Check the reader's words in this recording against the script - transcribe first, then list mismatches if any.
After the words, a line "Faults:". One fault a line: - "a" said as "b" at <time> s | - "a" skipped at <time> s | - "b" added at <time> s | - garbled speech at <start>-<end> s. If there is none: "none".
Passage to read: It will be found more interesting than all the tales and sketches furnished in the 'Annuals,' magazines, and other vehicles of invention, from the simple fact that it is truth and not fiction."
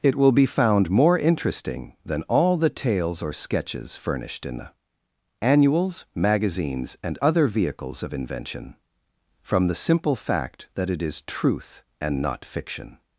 It will be found more interesting than all the tales or sketches furnished in the 'Annuals,' magazines, and other vehicles of invention, from the simple fact that it is truth and not fiction."
Faults:
- "and" said as "or" at 3.2 s